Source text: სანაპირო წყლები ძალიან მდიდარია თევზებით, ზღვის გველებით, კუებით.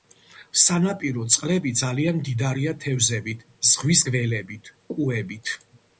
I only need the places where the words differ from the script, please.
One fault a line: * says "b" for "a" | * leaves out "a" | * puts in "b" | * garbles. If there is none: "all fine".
all fine